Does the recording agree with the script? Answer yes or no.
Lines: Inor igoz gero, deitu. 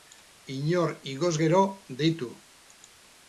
yes